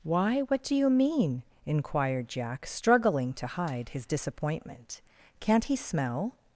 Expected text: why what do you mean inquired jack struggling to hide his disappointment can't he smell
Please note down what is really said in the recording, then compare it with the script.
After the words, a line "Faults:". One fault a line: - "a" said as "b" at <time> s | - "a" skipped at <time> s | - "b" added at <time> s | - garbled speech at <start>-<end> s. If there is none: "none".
why what do you mean inquired jack struggling to hide his disappointment can't he smell
Faults:
none